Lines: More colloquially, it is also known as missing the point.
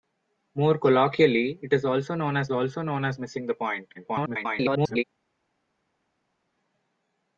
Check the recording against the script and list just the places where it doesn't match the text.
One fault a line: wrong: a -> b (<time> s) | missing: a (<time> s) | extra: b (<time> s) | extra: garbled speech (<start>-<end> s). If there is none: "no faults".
extra: also known as (2.5 s)
extra: garbled speech (3.9-5.0 s)